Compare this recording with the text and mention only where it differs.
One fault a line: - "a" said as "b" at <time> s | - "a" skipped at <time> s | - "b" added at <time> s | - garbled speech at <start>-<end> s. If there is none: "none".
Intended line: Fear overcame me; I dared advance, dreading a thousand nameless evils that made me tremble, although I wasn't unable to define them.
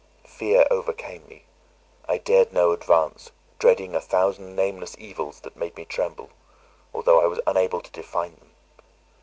- "no" added at 2.5 s
- "wasn't" said as "was" at 7.3 s